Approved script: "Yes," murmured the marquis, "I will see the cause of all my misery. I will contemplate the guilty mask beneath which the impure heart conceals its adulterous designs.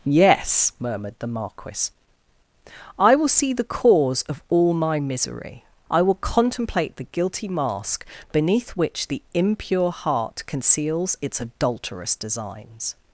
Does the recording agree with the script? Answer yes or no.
yes